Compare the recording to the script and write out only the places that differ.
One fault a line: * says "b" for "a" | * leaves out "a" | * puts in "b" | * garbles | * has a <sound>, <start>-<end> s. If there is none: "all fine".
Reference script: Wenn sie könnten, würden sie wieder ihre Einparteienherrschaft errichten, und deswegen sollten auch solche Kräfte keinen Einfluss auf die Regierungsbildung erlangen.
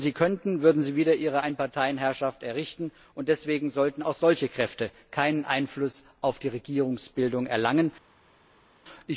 all fine